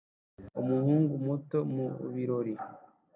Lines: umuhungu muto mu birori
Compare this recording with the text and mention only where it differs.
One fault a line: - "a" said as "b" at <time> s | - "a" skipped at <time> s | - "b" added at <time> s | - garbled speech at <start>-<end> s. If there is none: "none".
none